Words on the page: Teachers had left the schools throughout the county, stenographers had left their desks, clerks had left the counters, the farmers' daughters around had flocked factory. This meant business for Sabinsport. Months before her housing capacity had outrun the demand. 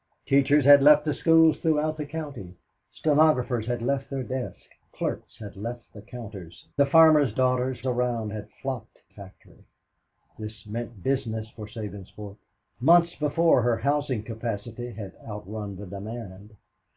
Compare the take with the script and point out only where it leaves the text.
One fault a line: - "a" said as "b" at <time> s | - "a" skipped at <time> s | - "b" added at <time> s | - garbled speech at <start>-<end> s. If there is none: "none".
none